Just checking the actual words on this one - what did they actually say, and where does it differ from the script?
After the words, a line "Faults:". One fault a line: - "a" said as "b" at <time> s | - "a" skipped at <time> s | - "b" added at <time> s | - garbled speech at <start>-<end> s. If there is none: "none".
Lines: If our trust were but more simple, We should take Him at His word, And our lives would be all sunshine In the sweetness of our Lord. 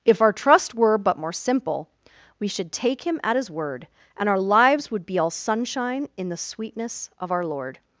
If our trust were but more simple, We should take Him at His word, And our lives would be all sunshine In the sweetness of our Lord.
Faults:
none